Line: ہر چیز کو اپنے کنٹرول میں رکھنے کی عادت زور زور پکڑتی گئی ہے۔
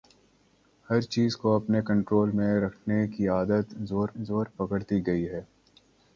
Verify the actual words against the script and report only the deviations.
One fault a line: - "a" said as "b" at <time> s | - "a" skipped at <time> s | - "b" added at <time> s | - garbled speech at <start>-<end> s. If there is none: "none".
none